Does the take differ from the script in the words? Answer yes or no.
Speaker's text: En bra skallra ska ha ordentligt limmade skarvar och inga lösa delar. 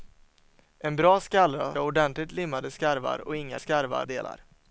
yes